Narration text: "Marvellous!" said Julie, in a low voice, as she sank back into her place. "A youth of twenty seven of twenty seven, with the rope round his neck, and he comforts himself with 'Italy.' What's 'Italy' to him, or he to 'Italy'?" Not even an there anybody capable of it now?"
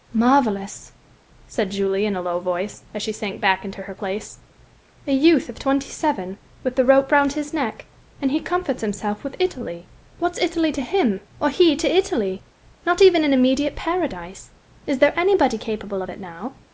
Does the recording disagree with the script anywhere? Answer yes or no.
yes